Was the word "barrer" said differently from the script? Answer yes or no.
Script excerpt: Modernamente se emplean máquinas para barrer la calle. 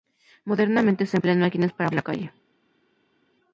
yes